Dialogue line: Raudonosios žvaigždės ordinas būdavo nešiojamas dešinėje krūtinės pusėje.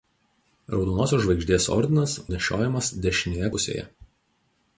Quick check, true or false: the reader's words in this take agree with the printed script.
false